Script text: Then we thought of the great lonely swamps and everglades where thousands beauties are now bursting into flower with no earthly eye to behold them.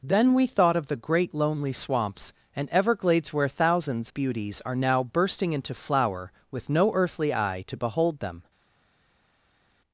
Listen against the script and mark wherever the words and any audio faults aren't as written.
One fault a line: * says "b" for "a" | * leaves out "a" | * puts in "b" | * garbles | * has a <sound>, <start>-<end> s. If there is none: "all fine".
all fine